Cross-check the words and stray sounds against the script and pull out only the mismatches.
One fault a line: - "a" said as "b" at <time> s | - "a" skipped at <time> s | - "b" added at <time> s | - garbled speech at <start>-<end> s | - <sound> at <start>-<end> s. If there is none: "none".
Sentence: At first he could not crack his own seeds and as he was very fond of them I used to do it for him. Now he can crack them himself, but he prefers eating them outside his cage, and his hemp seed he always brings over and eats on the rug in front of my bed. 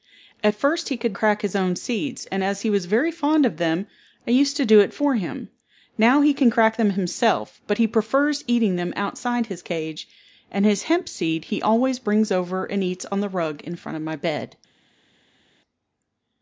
- "not" skipped at 1.1 s